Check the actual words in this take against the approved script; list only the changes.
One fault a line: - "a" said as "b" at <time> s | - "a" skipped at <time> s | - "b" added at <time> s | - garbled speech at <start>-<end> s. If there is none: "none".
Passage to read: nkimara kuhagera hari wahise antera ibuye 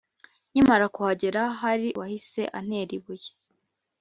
none